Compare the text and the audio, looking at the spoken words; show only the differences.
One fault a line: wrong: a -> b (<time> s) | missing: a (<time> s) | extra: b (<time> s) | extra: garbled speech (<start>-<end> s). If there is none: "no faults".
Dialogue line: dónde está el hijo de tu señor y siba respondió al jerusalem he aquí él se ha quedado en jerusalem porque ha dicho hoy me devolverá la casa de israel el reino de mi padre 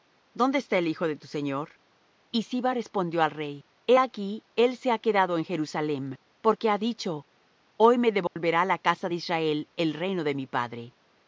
wrong: jerusalem -> rey (3.3 s)